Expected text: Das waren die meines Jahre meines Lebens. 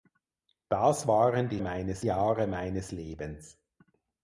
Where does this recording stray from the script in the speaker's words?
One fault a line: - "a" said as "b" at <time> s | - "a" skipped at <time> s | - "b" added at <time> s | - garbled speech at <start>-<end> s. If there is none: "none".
none